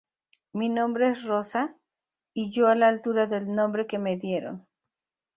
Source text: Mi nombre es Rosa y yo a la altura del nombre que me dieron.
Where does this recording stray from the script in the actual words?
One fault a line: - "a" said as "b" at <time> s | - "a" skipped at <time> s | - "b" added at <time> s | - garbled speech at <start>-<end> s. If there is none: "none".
none